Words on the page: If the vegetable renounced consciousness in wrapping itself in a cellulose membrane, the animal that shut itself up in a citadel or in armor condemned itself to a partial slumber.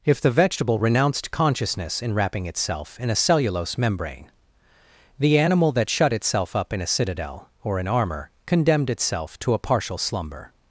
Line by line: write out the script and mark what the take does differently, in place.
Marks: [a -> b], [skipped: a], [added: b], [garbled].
If the vegetable renounced consciousness in wrapping itself in a cellulose membrane, the animal that shut itself up in a citadel or in armor condemned itself to a partial slumber.